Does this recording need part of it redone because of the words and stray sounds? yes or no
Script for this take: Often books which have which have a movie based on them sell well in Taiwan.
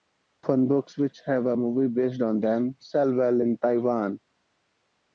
yes